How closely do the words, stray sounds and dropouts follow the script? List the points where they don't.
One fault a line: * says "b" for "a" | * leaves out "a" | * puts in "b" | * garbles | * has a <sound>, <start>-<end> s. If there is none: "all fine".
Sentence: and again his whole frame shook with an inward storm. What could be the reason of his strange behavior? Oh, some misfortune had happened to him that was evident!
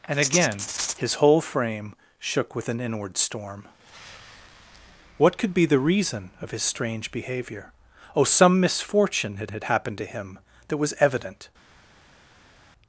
* puts in "had"